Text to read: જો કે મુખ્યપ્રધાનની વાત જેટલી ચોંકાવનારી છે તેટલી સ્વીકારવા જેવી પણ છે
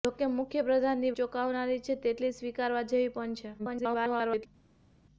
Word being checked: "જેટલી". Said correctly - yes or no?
no